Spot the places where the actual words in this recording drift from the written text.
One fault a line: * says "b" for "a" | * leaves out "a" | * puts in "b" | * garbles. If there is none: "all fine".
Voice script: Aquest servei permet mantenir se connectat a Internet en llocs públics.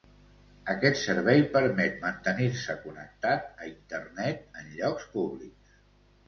all fine